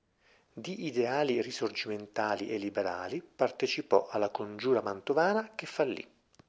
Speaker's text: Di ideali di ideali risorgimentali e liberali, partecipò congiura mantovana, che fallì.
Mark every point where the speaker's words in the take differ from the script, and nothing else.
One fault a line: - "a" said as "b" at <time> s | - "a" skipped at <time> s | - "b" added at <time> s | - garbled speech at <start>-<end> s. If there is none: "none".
- "di ideali" skipped at 1.4 s
- "alla" added at 4.1 s